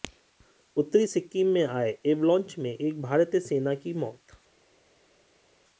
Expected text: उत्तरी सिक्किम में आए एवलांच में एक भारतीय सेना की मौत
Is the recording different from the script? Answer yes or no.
no